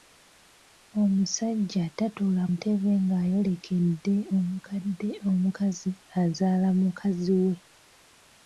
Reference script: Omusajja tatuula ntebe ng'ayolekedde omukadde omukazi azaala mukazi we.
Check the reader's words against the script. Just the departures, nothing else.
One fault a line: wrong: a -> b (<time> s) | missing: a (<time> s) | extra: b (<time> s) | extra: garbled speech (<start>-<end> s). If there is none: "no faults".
no faults